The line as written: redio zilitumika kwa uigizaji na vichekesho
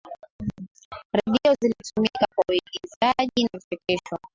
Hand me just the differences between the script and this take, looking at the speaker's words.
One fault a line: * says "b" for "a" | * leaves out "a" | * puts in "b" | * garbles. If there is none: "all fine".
all fine